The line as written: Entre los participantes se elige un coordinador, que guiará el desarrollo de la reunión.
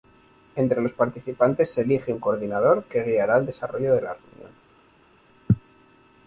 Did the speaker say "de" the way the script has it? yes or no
yes